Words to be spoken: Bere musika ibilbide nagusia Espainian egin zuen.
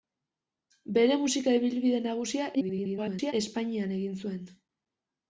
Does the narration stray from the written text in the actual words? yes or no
yes